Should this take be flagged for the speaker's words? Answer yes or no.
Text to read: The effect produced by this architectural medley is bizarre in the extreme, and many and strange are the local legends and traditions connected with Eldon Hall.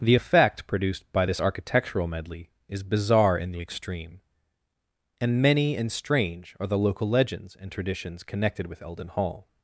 no